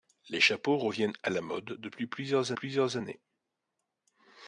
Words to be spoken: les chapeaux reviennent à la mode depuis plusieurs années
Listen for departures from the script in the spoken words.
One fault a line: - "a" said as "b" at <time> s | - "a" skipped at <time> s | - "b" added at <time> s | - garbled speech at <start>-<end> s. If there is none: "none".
- "plusieurs" added at 2.5 s